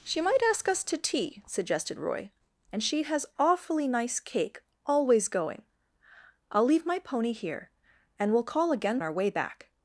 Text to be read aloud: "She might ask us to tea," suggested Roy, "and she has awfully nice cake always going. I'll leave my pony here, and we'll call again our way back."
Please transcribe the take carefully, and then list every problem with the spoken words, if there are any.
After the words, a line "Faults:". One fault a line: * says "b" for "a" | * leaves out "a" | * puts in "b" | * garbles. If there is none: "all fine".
"She might ask us to tea," suggested Roy, "and she has awfully nice cake always going. I'll leave my pony here, and we'll call again our way back."
Faults:
all fine